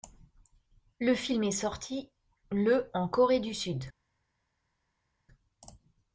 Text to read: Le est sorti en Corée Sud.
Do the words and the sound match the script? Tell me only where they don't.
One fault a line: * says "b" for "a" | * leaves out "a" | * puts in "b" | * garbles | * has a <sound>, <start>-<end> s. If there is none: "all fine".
* puts in "film"
* puts in "le"
* puts in "du"